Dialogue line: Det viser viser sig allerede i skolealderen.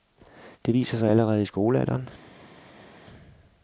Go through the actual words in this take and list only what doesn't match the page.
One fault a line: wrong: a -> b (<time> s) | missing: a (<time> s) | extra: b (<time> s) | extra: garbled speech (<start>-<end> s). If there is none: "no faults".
missing: viser (1.0 s)